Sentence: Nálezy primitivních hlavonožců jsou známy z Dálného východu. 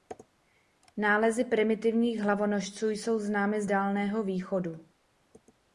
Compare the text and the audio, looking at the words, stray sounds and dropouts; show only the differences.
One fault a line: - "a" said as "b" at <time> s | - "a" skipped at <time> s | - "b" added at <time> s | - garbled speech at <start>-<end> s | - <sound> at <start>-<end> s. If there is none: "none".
none